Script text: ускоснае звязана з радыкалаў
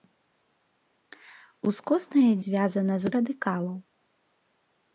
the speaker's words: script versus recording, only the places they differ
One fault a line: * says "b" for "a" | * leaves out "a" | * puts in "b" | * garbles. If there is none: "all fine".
all fine